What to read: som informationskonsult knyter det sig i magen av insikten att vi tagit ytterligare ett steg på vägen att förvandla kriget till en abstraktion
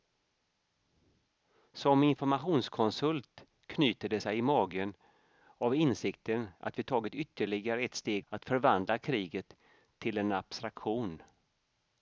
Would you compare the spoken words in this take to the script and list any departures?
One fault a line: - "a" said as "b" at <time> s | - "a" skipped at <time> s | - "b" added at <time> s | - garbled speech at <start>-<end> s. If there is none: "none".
- "på vägen" skipped at 8.3 s